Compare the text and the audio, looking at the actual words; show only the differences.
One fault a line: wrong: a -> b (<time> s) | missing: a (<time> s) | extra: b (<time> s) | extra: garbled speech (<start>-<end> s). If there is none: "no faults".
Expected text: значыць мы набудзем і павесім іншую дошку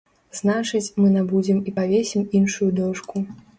no faults